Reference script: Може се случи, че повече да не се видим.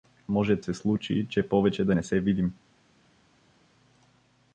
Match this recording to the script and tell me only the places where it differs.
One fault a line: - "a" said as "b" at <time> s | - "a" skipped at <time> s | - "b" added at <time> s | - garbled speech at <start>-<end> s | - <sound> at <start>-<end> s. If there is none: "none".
none